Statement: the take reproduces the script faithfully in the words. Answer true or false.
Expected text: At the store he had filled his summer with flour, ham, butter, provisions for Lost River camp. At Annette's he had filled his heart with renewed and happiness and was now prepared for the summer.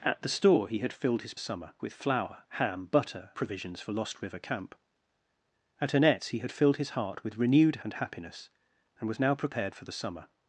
true